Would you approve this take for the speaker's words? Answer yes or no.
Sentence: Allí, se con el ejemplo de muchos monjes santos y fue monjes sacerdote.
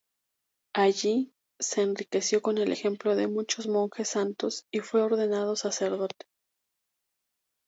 no